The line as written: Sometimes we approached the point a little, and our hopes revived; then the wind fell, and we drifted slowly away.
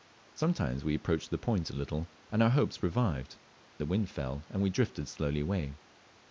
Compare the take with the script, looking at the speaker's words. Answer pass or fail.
fail